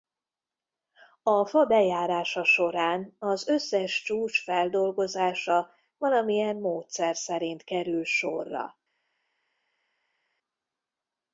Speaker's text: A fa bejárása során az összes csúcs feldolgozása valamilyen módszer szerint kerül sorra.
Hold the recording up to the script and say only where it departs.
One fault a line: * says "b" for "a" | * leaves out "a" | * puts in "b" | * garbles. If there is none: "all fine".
all fine